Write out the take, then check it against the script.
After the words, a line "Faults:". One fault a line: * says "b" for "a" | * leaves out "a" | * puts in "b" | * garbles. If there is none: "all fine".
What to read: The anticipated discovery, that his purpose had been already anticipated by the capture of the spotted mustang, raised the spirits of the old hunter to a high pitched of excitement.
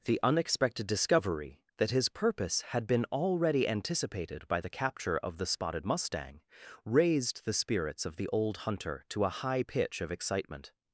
The unexpected discovery, that his purpose had been already anticipated by the capture of the spotted mustang, raised the spirits of the old hunter to a high pitch of excitement.
Faults:
* says "unexpected" for "anticipated"
* says "pitch" for "pitched"